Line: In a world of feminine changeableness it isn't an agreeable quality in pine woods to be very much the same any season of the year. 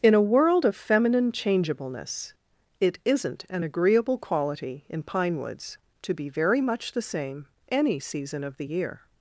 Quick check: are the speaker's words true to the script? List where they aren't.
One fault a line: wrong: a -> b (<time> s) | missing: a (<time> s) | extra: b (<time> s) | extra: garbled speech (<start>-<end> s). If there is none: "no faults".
no faults